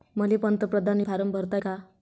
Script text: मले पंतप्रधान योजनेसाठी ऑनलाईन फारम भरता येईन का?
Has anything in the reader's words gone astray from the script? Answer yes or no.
yes